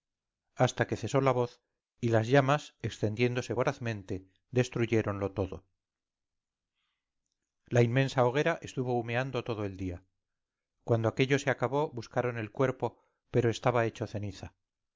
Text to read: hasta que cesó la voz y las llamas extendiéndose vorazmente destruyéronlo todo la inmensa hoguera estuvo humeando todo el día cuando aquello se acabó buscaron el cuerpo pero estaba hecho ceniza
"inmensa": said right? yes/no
yes